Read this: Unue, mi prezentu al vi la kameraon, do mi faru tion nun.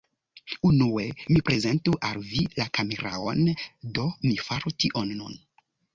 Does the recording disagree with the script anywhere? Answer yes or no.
no